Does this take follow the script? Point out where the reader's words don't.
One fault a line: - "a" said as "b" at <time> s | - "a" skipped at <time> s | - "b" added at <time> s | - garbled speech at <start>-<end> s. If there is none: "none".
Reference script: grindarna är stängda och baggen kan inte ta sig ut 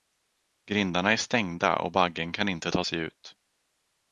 none